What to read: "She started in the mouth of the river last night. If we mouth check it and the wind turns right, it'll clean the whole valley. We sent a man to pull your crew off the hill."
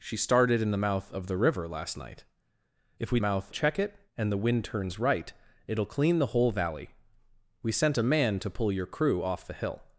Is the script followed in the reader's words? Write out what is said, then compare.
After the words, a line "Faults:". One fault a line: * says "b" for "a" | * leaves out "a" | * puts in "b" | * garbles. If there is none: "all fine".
"She started in the mouth of the river last night. If we mouth check it and the wind turns right, it'll clean the whole valley. We sent a man to pull your crew off the hill."
Faults:
all fine